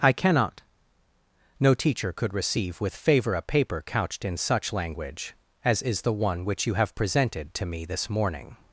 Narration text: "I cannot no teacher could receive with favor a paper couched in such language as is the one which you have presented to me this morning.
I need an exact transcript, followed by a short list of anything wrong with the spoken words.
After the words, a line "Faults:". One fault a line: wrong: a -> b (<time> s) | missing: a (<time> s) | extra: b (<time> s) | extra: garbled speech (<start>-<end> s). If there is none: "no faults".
"I cannot no teacher could receive with favor a paper couched in such language as is the one which you have presented to me this morning.
Faults:
no faults